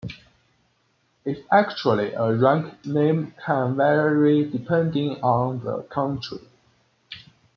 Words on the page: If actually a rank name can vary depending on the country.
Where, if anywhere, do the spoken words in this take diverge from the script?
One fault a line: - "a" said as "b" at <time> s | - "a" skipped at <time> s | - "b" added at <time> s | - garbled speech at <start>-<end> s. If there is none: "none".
none